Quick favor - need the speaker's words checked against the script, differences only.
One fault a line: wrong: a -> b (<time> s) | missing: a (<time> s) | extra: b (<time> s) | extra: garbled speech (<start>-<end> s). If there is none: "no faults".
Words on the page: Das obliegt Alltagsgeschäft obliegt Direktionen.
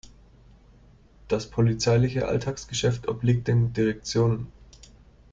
wrong: obliegt -> polizeiliche (1.5 s)
extra: den (3.5 s)